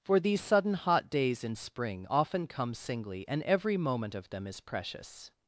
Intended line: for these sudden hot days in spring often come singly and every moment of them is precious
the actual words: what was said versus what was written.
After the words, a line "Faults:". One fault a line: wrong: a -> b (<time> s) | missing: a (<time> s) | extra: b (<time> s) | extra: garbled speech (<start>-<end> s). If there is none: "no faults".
for these sudden hot days in spring often come singly and every moment of them is precious
Faults:
no faults